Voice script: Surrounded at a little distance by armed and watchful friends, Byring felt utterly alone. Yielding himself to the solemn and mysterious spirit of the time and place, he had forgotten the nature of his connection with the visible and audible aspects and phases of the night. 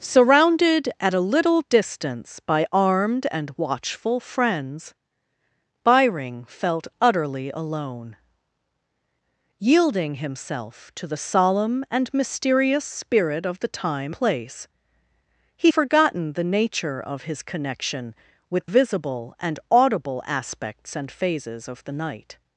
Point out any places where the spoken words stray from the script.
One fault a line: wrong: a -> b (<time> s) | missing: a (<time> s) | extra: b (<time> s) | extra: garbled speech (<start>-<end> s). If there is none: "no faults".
missing: and (14.2 s)
missing: had (15.7 s)
missing: the (18.7 s)